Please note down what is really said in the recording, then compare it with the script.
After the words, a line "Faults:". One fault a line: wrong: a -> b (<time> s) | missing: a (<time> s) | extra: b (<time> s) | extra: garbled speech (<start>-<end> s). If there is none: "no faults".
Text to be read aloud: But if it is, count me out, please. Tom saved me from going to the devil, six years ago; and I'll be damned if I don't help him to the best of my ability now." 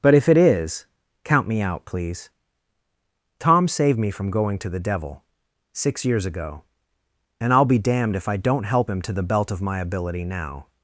But if it is, count me out, please. Tom saved me from going to the devil, six years ago; and I'll be damned if I don't help him to the belt of my ability now."
Faults:
wrong: best -> belt (9.2 s)